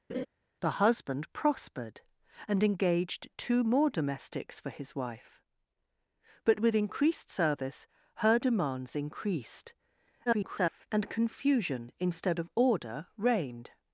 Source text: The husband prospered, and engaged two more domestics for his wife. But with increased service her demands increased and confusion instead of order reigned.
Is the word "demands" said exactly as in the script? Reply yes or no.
yes